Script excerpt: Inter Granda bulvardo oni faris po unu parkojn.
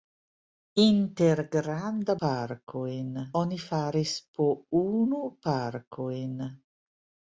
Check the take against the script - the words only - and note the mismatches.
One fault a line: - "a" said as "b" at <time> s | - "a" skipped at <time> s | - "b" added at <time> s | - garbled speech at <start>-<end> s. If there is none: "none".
- "bulvardo" said as "parkojn" at 2.3 s